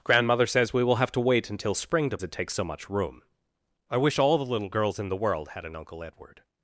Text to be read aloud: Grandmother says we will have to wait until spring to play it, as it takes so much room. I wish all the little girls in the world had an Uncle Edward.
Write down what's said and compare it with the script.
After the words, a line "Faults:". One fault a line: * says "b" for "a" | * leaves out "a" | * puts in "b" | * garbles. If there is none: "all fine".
Grandmother says we will have to wait until spring to it takes so much room. I wish all the little girls in the world had an Uncle Edward.
Faults:
* leaves out "play it as"